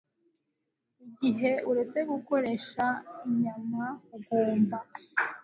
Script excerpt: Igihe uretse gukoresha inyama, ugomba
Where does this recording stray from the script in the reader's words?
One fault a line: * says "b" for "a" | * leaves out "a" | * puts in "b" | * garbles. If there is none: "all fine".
all fine